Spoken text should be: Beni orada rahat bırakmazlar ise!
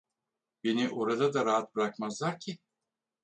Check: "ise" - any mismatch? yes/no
yes